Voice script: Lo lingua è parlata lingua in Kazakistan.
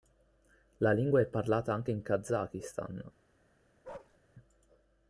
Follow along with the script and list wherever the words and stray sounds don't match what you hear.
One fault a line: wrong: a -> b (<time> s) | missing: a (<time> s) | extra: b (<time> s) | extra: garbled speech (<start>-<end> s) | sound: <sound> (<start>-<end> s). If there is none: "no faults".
wrong: Lo -> La (0.8 s)
wrong: lingua -> anche (1.8 s)
sound: bark (3.8-4.2 s)